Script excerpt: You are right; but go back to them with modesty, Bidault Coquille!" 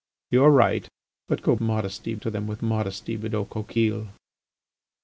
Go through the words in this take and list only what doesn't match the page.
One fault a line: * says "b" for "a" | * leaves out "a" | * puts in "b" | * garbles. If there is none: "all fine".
* says "modesty" for "back"